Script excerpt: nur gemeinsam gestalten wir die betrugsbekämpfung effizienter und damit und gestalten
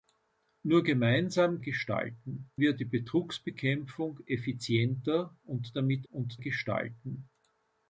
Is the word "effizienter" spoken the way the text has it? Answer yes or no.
yes